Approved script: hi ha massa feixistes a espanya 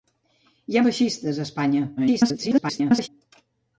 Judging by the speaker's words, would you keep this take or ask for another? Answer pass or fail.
fail